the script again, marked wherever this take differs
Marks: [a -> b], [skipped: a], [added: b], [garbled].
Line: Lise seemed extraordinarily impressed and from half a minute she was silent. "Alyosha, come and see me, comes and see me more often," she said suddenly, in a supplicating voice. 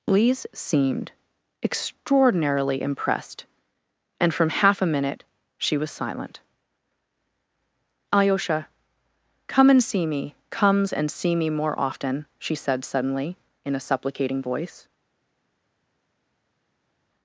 Lise seemed extraordinarily impressed and from half a minute she was silent. "Alyosha, come and see me, comes and see me more often," she said suddenly, in a supplicating voice.